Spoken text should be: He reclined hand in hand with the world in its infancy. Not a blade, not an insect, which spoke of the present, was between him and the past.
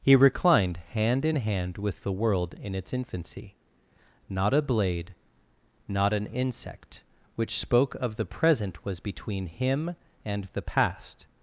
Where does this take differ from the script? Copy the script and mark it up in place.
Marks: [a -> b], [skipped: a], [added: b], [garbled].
He reclined hand in hand with the world in its infancy. Not a blade, not an insect, which spoke of the present, was between him and the past.